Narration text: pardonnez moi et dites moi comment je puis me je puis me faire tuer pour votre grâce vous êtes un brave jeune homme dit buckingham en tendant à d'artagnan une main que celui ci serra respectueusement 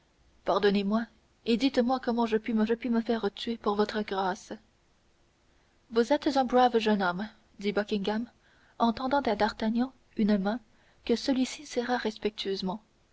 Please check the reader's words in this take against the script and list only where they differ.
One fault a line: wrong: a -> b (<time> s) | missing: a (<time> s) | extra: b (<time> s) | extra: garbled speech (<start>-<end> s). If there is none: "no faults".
no faults